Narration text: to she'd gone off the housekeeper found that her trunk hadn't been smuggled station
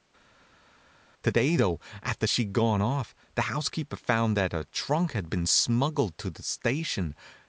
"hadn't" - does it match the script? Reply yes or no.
no